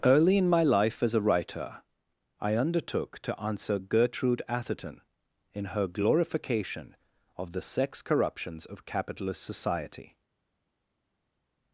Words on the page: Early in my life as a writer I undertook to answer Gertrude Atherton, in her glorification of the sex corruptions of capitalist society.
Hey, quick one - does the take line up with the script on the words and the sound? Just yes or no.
yes